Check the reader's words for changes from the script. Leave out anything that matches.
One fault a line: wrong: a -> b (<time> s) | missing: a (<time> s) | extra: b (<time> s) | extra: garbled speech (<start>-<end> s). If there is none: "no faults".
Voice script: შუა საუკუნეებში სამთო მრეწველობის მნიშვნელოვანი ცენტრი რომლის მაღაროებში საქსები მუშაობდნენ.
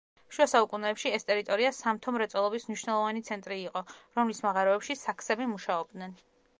extra: ეს ტერიტორია (1.2 s)
extra: იყო (3.7 s)